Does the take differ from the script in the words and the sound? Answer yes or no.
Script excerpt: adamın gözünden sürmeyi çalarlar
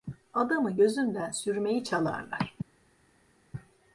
no